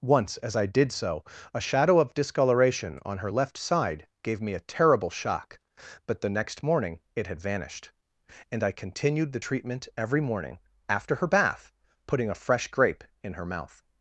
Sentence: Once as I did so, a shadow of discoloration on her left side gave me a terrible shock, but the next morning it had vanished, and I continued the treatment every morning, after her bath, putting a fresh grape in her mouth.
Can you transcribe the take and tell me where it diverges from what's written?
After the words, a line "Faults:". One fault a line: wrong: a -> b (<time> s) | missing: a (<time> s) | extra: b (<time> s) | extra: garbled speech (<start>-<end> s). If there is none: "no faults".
Once as I did so, a shadow of discoloration on her left side gave me a terrible shock, but the next morning it had vanished, and I continued the treatment every morning, after her bath, putting a fresh grape in her mouth.
Faults:
no faults